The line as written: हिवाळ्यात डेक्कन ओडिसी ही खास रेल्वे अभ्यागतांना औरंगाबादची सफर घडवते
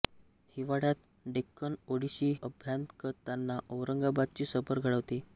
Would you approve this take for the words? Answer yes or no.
no